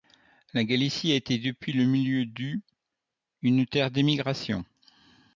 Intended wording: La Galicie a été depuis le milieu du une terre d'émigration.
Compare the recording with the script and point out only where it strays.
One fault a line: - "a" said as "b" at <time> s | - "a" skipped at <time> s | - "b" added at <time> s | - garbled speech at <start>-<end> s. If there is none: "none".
none